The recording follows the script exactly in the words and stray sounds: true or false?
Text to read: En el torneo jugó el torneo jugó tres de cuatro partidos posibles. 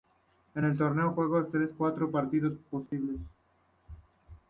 false